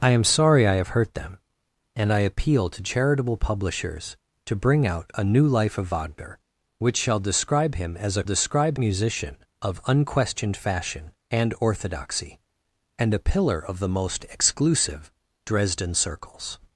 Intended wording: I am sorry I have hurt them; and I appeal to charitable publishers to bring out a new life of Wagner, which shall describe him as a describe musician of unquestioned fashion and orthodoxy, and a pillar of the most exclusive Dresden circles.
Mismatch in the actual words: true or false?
false